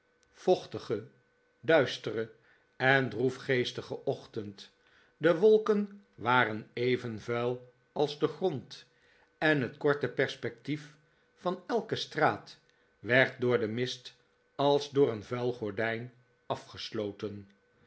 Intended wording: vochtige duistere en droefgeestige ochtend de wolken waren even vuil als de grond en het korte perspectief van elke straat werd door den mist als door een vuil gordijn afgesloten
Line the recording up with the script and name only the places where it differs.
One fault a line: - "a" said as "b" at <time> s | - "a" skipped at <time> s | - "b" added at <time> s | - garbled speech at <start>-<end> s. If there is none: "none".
none